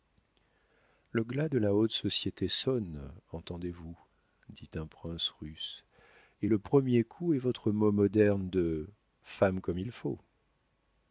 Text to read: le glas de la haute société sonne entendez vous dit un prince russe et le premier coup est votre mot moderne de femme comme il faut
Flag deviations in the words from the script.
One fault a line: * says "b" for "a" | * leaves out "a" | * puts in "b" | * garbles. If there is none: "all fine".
all fine